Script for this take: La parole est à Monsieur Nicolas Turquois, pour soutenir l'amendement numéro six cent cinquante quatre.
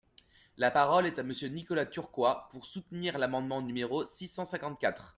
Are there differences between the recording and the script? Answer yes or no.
no